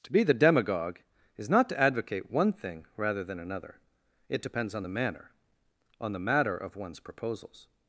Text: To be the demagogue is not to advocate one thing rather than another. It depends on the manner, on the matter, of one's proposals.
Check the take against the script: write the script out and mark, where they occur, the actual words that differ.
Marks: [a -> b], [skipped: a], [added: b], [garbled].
To be the demagogue is not to advocate one thing rather than another. It depends on the manner, on the matter, of one's proposals.